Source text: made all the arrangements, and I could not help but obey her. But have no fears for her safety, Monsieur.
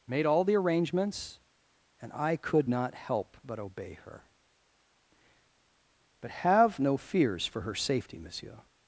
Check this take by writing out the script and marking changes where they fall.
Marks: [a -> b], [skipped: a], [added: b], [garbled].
made all the arrangements, and I could not help but obey her. But have no fears for her safety, Monsieur.